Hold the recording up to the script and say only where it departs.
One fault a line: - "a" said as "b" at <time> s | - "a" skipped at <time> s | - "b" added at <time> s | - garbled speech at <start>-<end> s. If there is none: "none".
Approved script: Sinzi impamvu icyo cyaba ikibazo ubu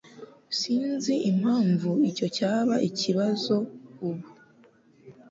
none